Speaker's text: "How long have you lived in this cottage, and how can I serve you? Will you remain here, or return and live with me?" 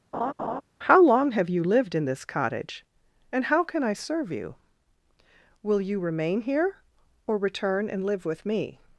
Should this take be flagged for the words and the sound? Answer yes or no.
yes